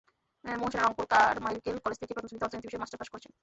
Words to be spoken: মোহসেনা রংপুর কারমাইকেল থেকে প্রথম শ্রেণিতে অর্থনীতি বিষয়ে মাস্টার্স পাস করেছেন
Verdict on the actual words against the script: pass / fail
fail